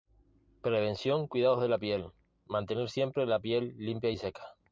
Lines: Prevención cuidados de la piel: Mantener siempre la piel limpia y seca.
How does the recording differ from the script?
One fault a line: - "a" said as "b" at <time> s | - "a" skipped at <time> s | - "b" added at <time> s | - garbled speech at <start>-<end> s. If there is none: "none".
none